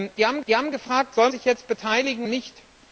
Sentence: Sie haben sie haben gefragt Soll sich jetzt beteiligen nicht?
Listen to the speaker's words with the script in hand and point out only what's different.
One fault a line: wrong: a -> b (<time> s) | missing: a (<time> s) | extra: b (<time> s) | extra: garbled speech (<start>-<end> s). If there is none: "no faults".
no faults